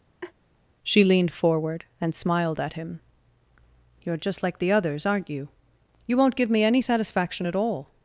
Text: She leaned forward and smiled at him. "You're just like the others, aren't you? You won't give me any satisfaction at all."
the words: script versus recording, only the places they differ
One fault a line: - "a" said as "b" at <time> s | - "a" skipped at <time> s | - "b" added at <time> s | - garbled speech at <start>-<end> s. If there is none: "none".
none